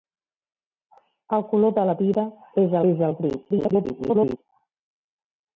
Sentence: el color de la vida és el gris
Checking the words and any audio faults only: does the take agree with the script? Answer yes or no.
no